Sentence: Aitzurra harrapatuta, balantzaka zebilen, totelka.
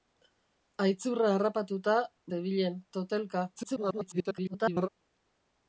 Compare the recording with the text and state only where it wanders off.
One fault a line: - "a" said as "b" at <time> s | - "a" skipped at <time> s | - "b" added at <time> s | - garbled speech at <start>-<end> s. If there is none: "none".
- "balantzaka" skipped at 2.0 s
- garbled speech at 3.6-4.9 s